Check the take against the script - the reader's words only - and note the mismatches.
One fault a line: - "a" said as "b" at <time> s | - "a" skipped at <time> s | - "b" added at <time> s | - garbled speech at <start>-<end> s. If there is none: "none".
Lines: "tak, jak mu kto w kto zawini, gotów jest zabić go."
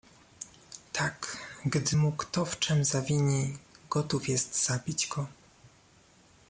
- "jak" said as "gdy" at 1.6 s
- "kto" said as "czem" at 2.6 s